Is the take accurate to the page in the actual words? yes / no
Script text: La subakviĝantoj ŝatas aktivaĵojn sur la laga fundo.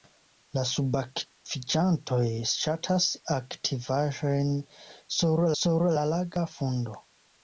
no